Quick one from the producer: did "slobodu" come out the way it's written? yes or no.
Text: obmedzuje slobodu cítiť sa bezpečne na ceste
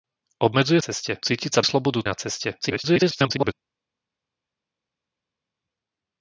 no